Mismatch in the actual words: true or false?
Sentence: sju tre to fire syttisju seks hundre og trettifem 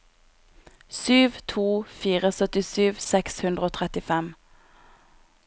true